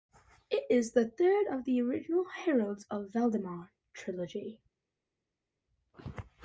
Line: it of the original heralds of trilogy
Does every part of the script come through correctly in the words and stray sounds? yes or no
no